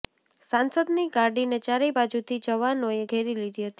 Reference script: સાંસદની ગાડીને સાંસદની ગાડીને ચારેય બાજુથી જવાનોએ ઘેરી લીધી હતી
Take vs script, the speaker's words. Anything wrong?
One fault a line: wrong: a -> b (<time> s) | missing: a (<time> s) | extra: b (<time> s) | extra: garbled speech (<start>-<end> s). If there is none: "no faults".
missing: સાંસદની ગાડીને (1.6 s)